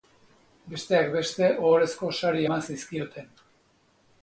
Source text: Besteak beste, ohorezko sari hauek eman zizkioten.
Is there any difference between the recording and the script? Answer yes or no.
yes